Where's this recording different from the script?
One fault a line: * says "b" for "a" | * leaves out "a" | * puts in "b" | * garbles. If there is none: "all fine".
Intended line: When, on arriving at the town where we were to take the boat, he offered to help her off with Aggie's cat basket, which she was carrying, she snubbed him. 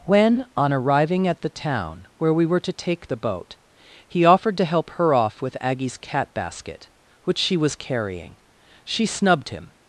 all fine